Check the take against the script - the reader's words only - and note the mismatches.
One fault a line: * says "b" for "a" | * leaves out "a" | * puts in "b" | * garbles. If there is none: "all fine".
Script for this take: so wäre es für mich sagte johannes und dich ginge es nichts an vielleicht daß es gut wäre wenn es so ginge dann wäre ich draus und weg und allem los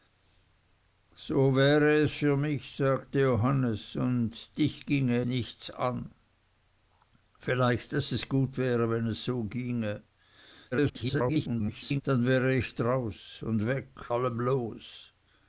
* leaves out "es"
* garbles
* leaves out "und"